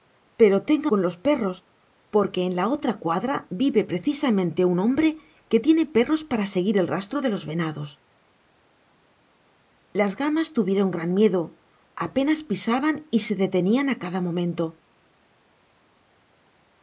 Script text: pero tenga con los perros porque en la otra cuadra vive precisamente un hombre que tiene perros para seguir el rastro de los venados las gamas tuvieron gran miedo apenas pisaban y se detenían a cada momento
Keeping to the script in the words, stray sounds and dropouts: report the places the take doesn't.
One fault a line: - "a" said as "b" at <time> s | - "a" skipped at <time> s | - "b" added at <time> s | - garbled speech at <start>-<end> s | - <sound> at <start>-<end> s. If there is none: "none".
none